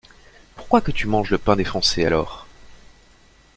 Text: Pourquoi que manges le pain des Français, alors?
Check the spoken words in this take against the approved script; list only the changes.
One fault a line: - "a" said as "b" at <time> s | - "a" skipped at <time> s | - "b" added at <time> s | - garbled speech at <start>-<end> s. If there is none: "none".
- "tu" added at 0.9 s